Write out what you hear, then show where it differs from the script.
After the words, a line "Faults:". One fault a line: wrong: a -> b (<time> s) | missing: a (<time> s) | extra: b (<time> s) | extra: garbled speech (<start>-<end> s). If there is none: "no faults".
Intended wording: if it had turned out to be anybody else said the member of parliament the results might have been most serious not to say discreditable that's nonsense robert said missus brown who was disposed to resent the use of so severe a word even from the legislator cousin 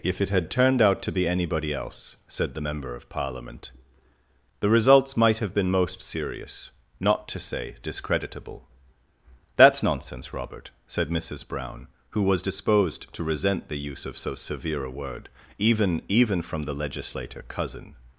if it had turned out to be anybody else said the member of parliament the results might have been most serious not to say discreditable that's nonsense robert said missus brown who was disposed to resent the use of so severe a word even even from the legislator cousin
Faults:
extra: even (16.1 s)